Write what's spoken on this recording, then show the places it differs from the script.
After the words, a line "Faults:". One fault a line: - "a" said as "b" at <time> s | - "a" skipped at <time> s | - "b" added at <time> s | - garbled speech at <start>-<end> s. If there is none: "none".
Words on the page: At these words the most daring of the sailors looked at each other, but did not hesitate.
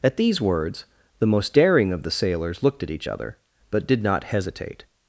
At these words the most daring of the sailors looked at each other, but did not hesitate.
Faults:
none